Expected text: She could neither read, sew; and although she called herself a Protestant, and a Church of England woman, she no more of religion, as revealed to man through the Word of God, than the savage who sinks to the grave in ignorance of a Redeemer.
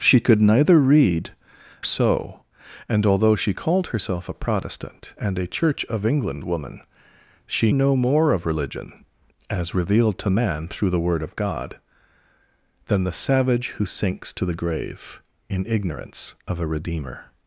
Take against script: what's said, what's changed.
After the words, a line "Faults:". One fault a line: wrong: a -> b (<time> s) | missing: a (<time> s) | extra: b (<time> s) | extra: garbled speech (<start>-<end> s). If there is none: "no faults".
She could neither read, sew; and although she called herself a Protestant, and a Church of England woman, she no more of religion, as revealed to man through the Word of God, than the savage who sinks to the grave in ignorance of a Redeemer.
Faults:
no faults